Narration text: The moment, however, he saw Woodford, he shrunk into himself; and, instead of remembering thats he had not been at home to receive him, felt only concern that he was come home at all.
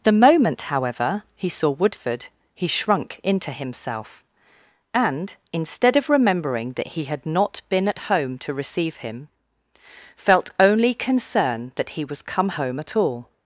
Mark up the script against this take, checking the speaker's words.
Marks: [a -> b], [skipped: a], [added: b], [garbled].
The moment, however, he saw Woodford, he shrunk into himself; and, instead of remembering [thats -> that] he had not been at home to receive him, felt only concern that he was come home at all.